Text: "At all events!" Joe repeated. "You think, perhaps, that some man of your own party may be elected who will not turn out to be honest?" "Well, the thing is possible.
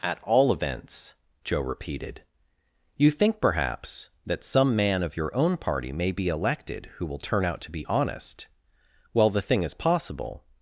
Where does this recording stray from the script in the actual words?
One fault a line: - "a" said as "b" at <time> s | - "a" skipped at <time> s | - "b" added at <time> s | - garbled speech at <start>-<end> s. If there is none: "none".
- "not" skipped at 7.2 s